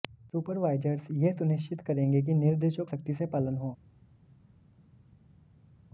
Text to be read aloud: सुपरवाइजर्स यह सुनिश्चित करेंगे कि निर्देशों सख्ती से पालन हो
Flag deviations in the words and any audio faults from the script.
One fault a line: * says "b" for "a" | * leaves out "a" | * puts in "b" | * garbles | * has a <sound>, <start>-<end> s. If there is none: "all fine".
all fine